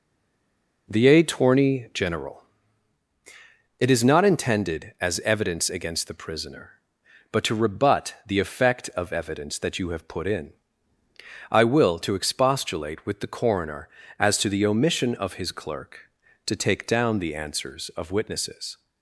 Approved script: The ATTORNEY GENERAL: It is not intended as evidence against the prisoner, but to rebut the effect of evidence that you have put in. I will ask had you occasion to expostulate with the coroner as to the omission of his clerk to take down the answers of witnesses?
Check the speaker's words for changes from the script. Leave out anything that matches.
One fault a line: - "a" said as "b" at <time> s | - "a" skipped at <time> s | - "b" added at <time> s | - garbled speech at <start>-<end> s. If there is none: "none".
- "ask had you occasion" skipped at 12.0 s